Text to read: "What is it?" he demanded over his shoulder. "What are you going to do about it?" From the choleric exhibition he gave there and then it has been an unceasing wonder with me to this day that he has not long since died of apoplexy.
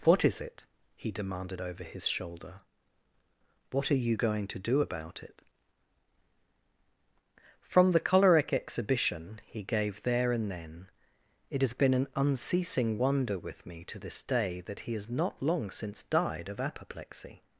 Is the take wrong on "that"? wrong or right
right